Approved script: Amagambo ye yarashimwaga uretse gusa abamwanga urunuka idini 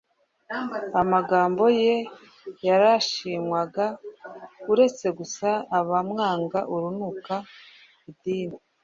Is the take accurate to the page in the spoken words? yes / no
yes